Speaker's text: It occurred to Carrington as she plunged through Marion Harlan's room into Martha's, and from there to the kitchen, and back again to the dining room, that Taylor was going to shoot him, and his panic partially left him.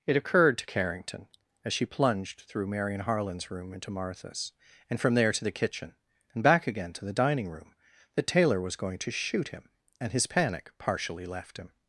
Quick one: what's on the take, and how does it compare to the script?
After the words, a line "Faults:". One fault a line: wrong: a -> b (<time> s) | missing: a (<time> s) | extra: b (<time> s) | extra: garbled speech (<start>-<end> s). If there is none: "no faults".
It occurred to Carrington as she plunged through Marion Harlan's room into Martha's, and from there to the kitchen, and back again to the dining room, that Taylor was going to shoot him, and his panic partially left him.
Faults:
no faults